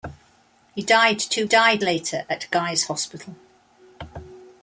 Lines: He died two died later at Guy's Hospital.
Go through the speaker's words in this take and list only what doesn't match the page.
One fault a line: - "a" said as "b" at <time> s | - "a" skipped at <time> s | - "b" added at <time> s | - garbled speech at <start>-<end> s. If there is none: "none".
none